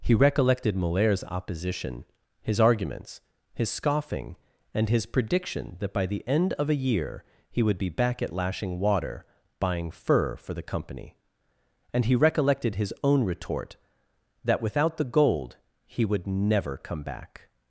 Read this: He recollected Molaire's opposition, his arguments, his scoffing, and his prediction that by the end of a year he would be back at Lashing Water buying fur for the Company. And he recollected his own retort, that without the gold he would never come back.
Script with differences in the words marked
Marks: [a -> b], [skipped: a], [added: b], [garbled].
He recollected Molaire's opposition, his arguments, his scoffing, and his prediction that by the end of a year he would be back at Lashing Water buying fur for the Company. And he recollected his own retort, that without the gold he would never come back.